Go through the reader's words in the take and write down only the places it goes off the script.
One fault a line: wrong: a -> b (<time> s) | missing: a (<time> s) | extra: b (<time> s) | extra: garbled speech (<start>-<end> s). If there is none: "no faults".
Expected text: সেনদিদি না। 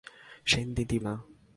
no faults